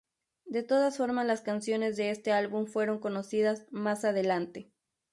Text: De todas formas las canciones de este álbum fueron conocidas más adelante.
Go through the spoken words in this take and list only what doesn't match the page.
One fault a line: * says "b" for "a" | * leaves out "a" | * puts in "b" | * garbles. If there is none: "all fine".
all fine